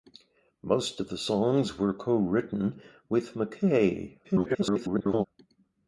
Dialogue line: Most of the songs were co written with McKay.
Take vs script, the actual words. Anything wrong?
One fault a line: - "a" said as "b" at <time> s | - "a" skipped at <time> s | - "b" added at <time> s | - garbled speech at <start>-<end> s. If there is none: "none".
- garbled speech at 4.2-5.3 s